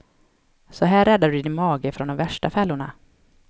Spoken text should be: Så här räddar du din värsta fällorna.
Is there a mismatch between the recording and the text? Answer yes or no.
yes